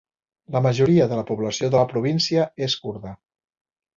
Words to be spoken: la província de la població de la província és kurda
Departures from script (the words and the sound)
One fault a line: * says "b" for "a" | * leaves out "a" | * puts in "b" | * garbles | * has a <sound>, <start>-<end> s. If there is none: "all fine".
* says "majoria" for "província"